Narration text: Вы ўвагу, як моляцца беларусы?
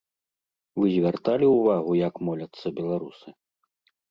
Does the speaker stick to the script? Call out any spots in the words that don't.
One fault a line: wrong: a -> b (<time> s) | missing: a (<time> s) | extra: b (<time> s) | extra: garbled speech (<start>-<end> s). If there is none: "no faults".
extra: звярталі (0.9 s)